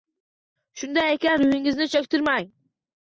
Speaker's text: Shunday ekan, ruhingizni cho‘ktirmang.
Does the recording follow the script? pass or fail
pass